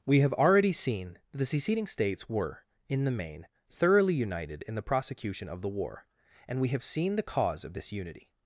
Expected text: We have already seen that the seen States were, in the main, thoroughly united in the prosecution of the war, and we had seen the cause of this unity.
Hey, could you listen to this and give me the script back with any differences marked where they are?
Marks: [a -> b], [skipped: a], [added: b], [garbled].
We have already seen that the [seen -> seceding] States were, in the main, thoroughly united in the prosecution of the war, and we [had -> have] seen the cause of this unity.